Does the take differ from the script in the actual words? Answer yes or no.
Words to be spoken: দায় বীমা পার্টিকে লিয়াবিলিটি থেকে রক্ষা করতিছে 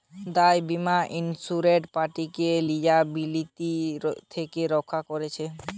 yes